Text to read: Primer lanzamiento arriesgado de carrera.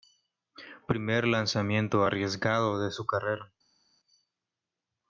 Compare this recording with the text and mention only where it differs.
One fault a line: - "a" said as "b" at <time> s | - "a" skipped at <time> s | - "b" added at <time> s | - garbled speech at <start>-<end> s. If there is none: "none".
- "su" added at 2.9 s